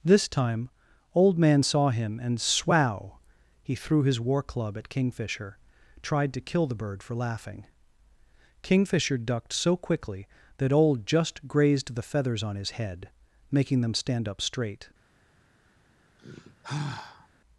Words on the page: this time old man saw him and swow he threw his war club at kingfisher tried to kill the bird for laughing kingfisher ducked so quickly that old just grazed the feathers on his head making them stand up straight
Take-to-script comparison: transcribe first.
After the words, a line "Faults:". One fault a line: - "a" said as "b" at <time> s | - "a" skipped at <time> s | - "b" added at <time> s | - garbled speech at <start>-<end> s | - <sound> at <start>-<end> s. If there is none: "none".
this time old man saw him and swow he threw his war club at kingfisher tried to kill the bird for laughing kingfisher ducked so quickly that old just grazed the feathers on his head making them stand up straight
Faults:
- sigh at 16.2-17.3 s